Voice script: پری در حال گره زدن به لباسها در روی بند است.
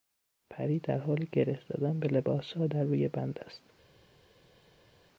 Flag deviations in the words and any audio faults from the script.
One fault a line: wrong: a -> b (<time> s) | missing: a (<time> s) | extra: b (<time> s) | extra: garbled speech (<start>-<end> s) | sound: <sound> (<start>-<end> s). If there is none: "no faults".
no faults